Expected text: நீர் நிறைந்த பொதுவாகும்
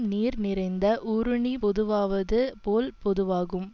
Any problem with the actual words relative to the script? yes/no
yes